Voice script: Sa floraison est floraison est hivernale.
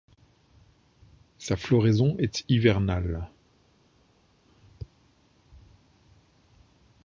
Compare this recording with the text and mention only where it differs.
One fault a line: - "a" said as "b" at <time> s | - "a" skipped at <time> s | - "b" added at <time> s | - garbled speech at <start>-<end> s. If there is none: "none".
- "floraison est" skipped at 2.4 s